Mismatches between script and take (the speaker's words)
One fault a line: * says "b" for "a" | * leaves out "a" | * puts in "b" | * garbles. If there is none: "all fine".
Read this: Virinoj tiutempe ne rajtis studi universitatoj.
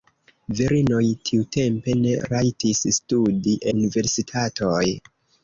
all fine